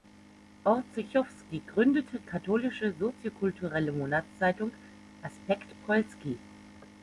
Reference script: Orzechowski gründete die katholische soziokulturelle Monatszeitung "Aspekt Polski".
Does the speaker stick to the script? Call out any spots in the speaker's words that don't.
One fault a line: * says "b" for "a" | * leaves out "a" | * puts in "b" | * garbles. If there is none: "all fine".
* leaves out "die"